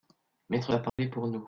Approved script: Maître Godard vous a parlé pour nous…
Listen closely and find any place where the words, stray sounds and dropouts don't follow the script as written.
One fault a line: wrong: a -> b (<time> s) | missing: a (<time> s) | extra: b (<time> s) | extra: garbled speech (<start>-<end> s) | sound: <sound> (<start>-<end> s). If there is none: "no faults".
missing: Godard vous (0.7 s)
sound: dropout (0.9-1.0 s)